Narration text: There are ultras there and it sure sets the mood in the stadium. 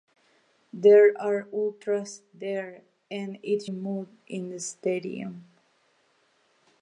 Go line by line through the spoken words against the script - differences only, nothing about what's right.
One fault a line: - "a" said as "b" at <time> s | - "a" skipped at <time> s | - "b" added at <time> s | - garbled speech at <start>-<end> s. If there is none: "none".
- "sure sets the" skipped at 3.6 s